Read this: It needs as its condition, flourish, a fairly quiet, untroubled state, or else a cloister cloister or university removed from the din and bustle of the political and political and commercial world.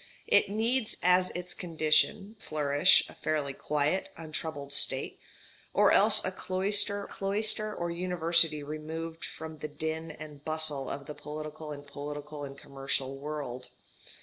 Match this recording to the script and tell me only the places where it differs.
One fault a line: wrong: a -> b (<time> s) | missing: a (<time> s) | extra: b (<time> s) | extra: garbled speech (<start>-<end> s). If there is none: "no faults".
no faults